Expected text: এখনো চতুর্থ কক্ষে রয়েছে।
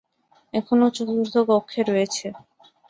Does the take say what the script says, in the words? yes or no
yes